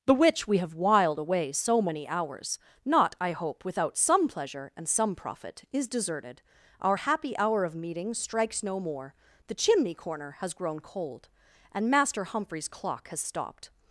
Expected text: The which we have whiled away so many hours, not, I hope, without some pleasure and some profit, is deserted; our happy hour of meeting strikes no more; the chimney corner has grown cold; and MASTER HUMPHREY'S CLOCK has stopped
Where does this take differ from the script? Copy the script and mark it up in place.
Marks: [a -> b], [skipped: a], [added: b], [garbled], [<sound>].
The which we have whiled away so many hours, not, I hope, without some pleasure and some profit, is deserted; our happy hour of meeting strikes no more; the chimney corner has grown cold; and MASTER HUMPHREY'S CLOCK has stopped